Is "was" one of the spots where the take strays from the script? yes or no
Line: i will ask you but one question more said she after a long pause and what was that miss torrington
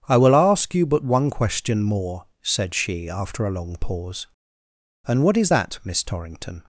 yes